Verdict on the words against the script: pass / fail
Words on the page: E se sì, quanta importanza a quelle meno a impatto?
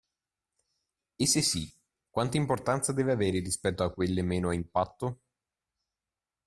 fail